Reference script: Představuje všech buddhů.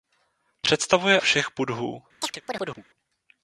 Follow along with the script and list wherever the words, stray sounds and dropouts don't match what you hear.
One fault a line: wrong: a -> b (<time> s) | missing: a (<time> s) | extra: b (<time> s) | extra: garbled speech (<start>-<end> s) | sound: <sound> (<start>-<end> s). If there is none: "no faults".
sound: chirp (2.2-2.8 s)